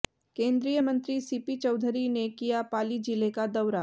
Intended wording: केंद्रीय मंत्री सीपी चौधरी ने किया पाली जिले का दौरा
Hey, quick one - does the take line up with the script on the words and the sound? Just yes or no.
yes